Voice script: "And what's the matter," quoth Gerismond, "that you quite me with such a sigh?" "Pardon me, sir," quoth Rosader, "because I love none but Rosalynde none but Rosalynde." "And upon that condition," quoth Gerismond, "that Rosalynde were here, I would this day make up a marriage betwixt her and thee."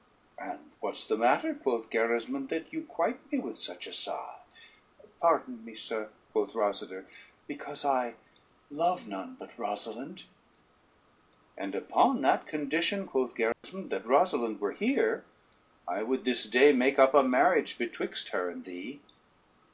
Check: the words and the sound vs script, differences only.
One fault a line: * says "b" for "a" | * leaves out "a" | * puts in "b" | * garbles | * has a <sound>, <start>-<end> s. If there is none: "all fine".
* leaves out "none but Rosalynde"
* has a dropout, 13.5-13.6 s